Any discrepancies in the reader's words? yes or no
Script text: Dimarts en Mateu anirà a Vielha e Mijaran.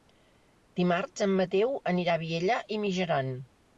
no